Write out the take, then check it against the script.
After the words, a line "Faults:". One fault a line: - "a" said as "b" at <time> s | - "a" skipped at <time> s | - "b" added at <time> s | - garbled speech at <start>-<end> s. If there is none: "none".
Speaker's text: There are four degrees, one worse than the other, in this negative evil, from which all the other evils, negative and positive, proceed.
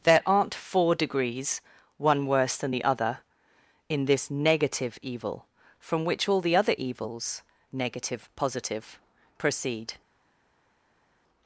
There aren't four degrees, one worse than the other, in this negative evil, from which all the other evils, negative positive, proceed.
Faults:
- "are" said as "aren't" at 0.2 s
- "and" skipped at 8.3 s